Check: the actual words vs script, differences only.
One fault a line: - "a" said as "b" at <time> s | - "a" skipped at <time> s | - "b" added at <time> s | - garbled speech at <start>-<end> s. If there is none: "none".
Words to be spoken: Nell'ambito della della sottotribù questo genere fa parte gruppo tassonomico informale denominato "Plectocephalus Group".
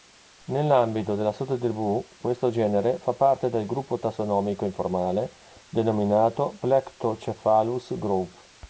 - "della" skipped at 1.3 s
- "del" added at 3.5 s